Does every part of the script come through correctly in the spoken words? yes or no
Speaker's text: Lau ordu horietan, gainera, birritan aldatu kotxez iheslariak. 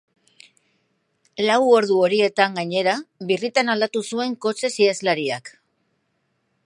no